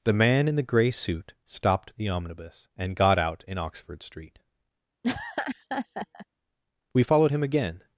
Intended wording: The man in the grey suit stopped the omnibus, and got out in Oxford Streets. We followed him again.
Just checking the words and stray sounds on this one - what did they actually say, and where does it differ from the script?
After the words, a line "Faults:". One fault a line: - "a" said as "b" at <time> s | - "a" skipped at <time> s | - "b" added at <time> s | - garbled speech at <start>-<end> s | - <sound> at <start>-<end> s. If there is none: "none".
The man in the grey suit stopped the omnibus, and got out in Oxford Street. We followed him again.
Faults:
- "Streets" said as "Street" at 4.0 s
- laugh at 5.0-6.3 s